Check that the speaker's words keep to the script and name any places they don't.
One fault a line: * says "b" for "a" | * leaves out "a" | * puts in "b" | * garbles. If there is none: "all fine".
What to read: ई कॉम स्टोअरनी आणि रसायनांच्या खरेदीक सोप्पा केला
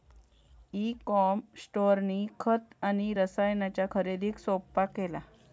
* puts in "खत"